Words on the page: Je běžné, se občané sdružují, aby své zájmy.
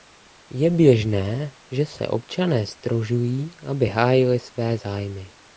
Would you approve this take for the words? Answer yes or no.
no